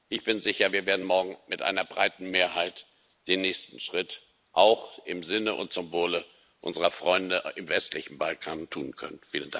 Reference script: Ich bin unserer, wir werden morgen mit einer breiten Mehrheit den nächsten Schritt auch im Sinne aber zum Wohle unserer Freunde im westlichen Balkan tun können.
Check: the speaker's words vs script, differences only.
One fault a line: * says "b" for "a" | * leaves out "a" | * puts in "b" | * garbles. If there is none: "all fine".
* says "sicher" for "unserer"
* says "und" for "aber"